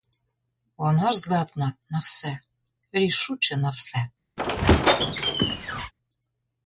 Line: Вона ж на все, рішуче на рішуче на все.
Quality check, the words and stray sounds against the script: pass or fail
fail